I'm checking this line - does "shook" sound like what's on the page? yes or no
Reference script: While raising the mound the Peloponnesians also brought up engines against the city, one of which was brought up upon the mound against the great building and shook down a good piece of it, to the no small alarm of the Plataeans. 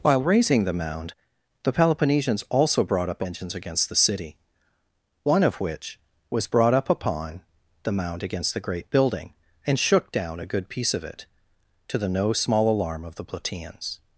yes